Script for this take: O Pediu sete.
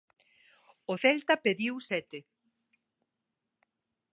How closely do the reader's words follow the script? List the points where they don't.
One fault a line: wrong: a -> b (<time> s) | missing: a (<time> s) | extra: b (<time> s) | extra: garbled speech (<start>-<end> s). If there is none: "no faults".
extra: Celta (1.0 s)